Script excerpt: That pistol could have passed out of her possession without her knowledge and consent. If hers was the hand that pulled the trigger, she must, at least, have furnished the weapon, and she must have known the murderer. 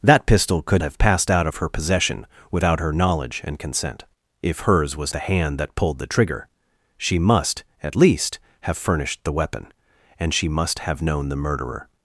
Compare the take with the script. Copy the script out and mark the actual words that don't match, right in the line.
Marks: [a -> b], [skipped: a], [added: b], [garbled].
That pistol could have passed out of her possession without her knowledge and consent. If hers was the hand that pulled the trigger, she must, at least, have furnished the weapon, and she must have known the murderer.